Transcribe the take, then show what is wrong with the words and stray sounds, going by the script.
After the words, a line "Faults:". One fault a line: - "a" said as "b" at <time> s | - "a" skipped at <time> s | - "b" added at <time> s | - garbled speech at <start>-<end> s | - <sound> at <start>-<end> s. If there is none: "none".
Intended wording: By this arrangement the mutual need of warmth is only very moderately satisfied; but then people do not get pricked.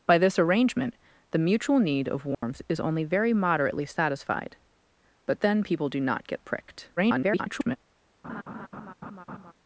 By this arrangement the mutual need of warmth is only very moderately satisfied; but then people do not get pricked. [garbled]
Faults:
- dropout at 2.3-2.4 s
- garbled speech at 7.0-7.8 s
- laugh at 8.2-9.5 s